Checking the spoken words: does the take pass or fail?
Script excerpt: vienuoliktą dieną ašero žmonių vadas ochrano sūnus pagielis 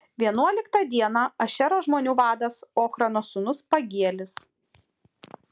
pass